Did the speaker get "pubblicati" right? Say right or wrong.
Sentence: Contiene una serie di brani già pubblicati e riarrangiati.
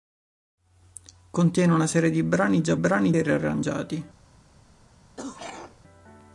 wrong